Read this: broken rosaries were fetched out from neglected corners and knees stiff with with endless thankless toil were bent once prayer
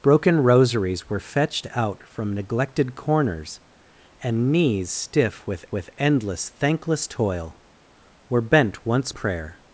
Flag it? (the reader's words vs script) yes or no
no